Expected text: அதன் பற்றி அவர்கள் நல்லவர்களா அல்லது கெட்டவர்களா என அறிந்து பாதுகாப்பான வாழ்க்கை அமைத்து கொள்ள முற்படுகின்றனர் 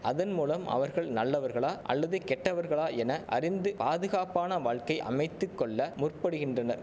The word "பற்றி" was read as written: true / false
false